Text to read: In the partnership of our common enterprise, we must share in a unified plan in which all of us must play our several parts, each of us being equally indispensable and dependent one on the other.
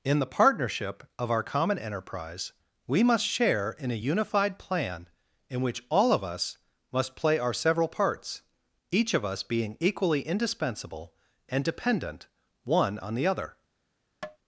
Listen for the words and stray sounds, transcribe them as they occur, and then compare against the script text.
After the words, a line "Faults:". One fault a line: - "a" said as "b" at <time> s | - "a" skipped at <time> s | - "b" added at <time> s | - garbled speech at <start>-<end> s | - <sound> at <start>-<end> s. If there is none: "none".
In the partnership of our common enterprise, we must share in a unified plan in which all of us must play our several parts, each of us being equally indispensable and dependent one on the other.
Faults:
- tap at 14.2-14.4 s